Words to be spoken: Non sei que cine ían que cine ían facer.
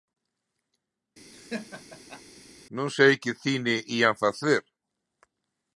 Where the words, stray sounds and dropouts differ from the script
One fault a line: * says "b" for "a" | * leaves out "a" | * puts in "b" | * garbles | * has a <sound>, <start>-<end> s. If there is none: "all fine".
* has a laugh, 1.3-2.2 s
* leaves out "que cine ían"